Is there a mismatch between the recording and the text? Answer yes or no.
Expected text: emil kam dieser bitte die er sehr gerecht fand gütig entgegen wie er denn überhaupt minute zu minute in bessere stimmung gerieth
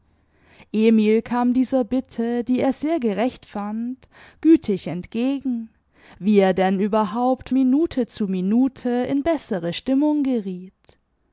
no